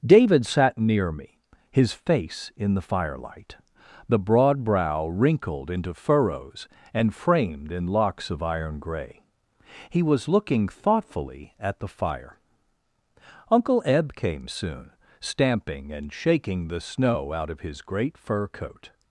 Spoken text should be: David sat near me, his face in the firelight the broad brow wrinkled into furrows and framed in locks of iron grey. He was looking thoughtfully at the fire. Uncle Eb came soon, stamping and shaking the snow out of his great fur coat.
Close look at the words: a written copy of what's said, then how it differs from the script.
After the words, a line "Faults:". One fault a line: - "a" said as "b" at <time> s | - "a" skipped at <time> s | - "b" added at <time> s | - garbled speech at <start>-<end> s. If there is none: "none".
David sat near me, his face in the firelight the broad brow wrinkled into furrows and framed in locks of iron grey. He was looking thoughtfully at the fire. Uncle Eb came soon, stamping and shaking the snow out of his great fur coat.
Faults:
none